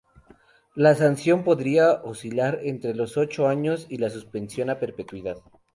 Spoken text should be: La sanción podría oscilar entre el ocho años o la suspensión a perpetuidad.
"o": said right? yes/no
no